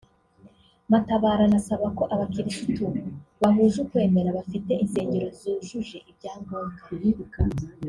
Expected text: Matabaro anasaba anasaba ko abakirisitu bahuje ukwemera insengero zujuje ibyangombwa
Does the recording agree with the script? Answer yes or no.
no